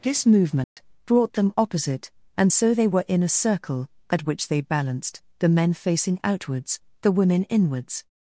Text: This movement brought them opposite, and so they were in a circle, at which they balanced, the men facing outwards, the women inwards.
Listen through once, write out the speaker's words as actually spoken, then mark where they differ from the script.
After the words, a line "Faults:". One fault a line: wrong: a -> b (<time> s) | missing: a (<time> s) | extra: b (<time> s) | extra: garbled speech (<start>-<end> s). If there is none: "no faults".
This movement brought them opposite, and so they were in a circle, at which they balanced, the men facing outwards, the women inwards.
Faults:
no faults